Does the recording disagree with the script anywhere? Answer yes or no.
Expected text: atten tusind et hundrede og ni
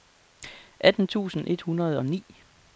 no